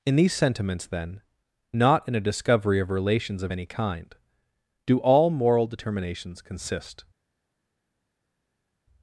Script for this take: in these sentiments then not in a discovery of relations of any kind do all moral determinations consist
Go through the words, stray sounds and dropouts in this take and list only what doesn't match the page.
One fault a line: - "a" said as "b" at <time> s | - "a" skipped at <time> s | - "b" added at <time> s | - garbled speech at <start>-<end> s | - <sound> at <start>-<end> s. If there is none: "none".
none